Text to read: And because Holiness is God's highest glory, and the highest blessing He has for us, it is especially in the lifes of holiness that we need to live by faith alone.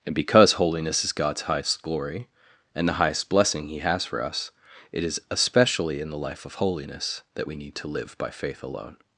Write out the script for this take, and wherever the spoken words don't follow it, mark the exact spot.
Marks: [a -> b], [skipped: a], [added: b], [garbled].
And because Holiness is God's highest glory, and the highest blessing He has for us, it is especially in the [lifes -> life] of holiness that we need to live by faith alone.